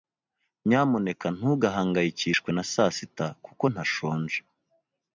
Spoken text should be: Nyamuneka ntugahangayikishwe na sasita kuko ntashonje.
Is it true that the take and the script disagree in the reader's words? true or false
false